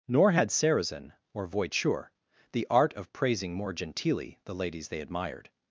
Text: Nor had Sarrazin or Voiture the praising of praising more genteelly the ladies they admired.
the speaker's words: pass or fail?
fail